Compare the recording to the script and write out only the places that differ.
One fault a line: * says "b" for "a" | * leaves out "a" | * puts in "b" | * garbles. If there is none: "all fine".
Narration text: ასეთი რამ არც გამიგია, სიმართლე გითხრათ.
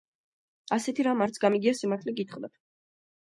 all fine